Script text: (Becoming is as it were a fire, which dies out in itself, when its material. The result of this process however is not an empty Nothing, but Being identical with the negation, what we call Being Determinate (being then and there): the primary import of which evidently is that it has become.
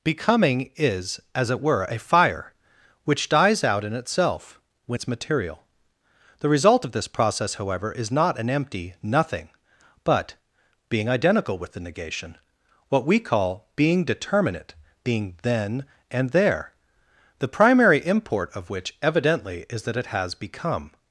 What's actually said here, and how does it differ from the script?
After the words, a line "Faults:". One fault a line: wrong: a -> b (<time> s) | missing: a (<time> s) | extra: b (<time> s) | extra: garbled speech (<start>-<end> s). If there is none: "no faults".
(Becoming is as it were a fire, which dies out in itself, when its material. The result of this process however is not an empty Nothing, but Being identical with the negation, what we call Being Determinate (being then and there): the primary import of which evidently is that it has become.
Faults:
no faults